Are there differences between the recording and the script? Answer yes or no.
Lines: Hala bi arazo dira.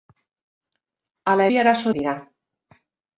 no